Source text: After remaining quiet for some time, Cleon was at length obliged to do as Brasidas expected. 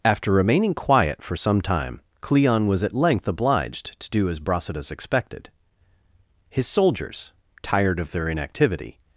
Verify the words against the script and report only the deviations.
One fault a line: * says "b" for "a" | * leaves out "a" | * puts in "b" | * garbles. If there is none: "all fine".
* puts in "His soldiers tired of their inactivity"